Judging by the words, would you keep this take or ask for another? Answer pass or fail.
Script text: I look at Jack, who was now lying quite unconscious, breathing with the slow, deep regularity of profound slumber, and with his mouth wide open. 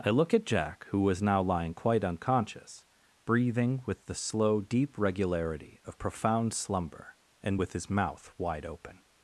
pass